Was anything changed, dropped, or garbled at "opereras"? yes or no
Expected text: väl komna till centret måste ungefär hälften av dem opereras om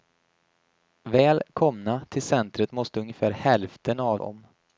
yes